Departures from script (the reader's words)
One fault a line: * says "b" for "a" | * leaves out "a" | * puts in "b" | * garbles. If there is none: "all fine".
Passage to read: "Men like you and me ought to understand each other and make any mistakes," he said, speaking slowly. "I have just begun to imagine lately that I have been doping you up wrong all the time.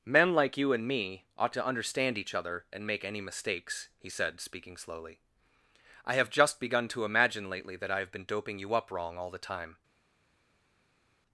all fine